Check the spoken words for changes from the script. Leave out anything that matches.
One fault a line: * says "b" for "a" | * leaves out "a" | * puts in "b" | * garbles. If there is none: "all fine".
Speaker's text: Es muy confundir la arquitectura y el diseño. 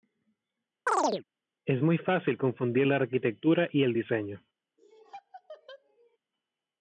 * puts in "fácil"